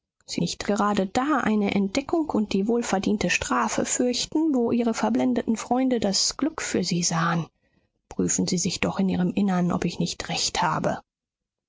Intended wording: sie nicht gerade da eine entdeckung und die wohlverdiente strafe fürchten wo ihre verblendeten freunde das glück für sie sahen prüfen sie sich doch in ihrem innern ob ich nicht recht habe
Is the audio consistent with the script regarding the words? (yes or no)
yes